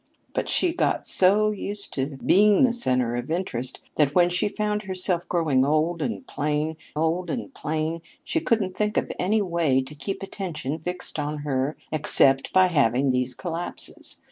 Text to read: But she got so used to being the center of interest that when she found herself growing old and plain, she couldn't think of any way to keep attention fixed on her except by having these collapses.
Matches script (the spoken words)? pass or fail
fail